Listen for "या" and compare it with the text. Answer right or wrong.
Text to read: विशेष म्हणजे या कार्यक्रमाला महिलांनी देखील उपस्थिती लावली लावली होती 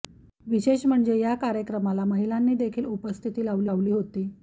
right